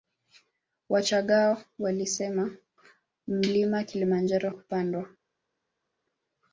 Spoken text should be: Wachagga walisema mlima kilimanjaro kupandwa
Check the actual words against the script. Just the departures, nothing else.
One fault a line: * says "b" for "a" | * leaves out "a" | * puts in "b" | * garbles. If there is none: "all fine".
all fine